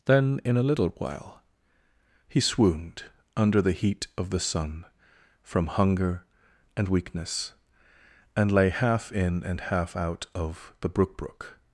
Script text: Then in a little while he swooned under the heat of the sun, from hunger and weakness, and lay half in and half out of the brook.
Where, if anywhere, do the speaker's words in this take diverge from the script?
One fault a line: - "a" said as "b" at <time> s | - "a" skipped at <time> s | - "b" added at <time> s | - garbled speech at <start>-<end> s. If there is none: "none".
- "brook" added at 11.2 s